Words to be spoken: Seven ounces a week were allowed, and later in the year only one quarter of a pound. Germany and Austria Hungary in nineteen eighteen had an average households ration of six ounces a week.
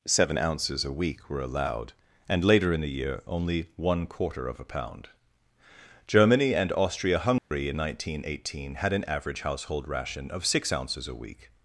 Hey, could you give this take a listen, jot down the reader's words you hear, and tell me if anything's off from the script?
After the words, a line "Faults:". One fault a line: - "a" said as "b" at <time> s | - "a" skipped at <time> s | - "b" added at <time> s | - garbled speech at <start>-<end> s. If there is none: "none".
Seven ounces a week were allowed, and later in the year only one quarter of a pound. Germany and Austria Hungary in nineteen eighteen had an average household ration of six ounces a week.
Faults:
- "households" said as "household" at 9.4 s